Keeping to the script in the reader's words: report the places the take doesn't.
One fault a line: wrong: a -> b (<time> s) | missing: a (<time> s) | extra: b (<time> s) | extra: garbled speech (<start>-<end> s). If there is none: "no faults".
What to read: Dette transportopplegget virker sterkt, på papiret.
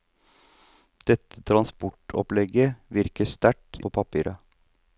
no faults